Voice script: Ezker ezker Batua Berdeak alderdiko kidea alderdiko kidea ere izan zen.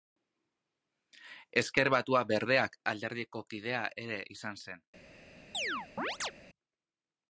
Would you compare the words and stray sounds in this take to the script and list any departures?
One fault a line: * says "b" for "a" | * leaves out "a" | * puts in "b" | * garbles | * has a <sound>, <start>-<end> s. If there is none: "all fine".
* leaves out "ezker"
* leaves out "alderdiko kidea"
* has a chirp, 5.5-6.3 s